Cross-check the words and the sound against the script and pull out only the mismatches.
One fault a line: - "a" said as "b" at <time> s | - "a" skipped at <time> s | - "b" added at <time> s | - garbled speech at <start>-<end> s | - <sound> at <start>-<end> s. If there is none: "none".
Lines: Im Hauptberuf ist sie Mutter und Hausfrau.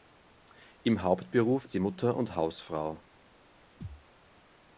- "ist" skipped at 1.6 s
- thud at 3.8-4.1 s